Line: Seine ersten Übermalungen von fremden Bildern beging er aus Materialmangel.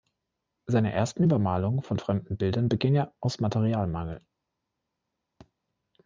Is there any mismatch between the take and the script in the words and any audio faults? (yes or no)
yes